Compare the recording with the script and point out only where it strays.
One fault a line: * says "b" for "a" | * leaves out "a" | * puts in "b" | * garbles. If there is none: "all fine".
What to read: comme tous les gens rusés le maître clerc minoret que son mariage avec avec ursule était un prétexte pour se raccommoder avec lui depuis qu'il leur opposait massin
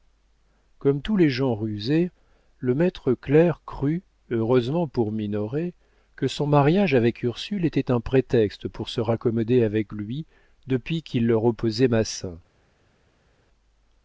* puts in "crut heureusement pour"
* leaves out "avec"